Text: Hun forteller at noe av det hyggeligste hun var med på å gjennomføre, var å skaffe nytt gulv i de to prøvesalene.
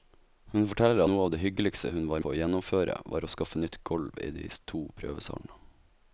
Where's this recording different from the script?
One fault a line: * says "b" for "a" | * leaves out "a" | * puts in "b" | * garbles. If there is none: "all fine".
* leaves out "at"
* leaves out "med"